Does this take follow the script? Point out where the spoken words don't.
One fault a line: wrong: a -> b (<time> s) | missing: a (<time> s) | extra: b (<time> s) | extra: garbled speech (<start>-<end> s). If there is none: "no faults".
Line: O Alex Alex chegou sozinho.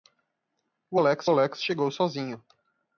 no faults